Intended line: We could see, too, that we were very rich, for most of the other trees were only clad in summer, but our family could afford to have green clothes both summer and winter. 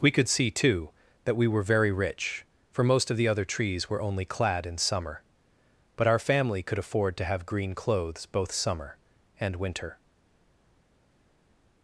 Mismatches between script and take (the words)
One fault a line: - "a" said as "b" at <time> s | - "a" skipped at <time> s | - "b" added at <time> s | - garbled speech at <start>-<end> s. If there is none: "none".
none